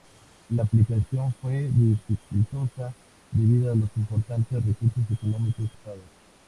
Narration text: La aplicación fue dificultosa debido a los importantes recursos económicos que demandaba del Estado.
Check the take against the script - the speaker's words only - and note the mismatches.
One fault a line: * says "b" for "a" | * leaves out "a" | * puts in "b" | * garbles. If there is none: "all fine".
* leaves out "que demandaba del"